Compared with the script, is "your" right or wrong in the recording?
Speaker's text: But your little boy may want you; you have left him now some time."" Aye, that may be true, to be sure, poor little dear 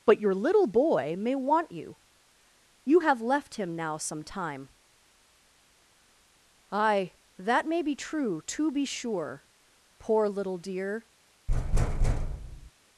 right